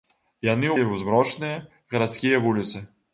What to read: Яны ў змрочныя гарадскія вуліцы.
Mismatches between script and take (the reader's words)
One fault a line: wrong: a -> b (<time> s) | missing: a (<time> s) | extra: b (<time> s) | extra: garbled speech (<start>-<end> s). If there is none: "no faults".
no faults